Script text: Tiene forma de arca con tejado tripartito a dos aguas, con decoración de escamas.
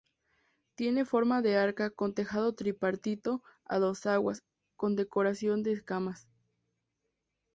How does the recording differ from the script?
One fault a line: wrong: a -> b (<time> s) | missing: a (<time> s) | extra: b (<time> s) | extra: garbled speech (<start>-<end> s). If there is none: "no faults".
no faults